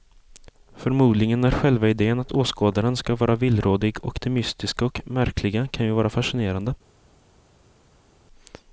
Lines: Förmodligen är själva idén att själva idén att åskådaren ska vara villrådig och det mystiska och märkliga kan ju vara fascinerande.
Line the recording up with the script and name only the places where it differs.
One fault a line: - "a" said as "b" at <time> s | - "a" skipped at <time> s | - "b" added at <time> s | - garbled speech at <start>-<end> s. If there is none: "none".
- "själva idén att" skipped at 2.3 s